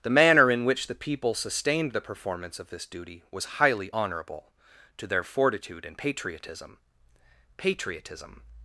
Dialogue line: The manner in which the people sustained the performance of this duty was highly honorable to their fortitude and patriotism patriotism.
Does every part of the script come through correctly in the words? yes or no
yes